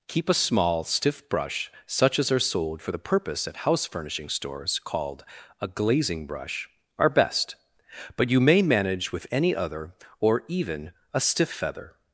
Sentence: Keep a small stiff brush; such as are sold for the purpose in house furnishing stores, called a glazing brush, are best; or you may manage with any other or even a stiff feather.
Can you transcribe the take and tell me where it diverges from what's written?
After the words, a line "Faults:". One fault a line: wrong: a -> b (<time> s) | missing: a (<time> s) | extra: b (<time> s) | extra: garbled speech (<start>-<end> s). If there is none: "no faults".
Keep a small stiff brush; such as are sold for the purpose at house furnishing stores, called a glazing brush, are best; but you may manage with any other or even a stiff feather.
Faults:
wrong: in -> at (3.5 s)
wrong: or -> but (8.2 s)